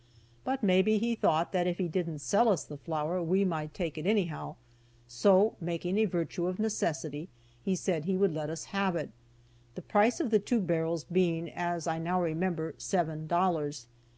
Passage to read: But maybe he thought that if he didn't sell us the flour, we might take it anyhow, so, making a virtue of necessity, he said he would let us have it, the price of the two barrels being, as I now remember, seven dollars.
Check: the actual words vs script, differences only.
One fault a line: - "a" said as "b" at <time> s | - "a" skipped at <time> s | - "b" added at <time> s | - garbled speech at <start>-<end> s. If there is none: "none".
none